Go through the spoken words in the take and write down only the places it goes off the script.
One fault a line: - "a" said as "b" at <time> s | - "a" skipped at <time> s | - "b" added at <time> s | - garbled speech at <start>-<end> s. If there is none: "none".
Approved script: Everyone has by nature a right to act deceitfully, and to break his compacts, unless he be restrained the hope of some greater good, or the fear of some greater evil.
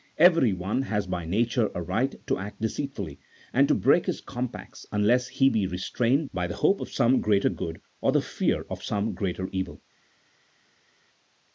- "by" added at 6.3 s